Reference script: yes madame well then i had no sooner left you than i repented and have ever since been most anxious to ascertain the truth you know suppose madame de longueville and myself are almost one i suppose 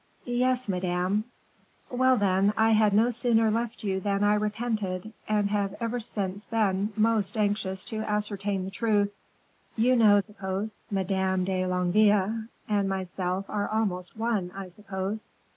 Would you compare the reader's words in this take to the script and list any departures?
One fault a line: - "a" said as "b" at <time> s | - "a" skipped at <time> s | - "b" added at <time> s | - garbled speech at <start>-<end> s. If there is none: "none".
none